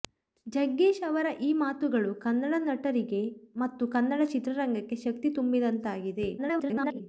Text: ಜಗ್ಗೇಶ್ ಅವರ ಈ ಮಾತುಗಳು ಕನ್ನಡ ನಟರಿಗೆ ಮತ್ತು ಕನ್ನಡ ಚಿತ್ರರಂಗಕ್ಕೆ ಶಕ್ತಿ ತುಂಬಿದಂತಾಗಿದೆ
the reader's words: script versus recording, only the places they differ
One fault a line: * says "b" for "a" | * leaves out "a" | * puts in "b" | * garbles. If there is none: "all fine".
* garbles